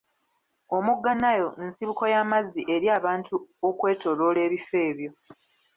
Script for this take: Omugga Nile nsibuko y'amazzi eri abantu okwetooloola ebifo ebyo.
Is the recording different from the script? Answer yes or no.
no